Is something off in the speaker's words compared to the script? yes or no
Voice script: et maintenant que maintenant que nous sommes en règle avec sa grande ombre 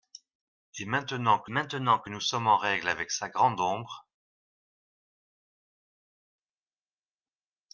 no